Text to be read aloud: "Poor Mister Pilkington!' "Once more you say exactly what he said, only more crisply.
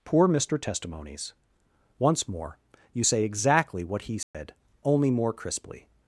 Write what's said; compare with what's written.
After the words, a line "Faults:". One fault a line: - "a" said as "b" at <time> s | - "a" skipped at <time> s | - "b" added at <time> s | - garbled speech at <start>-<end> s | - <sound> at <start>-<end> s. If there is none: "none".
"Poor Mister Testimonies!' "Once more you say exactly what he said, only more crisply.
Faults:
- "Pilkington" said as "Testimonies" at 0.6 s
- dropout at 4.2-4.3 s